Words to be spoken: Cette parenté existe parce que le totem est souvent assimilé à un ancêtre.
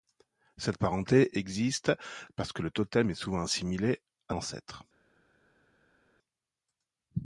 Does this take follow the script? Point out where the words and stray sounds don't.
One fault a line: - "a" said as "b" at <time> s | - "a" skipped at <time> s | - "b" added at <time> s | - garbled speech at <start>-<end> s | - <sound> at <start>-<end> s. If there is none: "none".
- "un" skipped at 4.4 s